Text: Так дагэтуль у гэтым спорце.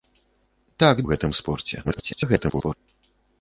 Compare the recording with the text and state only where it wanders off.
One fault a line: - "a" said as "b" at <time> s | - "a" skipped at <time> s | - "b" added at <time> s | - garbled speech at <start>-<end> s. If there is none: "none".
- "дагэтуль" skipped at 1.0 s
- garbled speech at 1.8-2.8 s